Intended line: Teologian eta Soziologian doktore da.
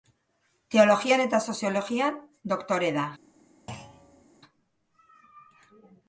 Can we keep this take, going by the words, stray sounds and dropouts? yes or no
no